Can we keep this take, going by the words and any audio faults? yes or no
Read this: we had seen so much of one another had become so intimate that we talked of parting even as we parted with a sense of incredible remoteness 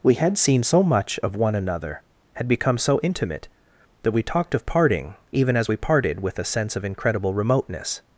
yes